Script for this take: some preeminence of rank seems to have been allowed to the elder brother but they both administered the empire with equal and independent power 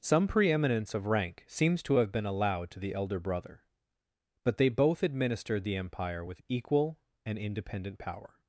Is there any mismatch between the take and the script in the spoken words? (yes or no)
no